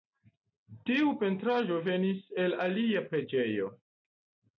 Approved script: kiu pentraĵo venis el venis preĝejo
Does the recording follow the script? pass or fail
fail